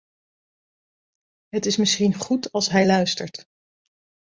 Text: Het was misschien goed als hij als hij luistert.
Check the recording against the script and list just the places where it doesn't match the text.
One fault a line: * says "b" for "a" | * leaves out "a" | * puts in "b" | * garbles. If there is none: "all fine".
* says "is" for "was"
* leaves out "als hij"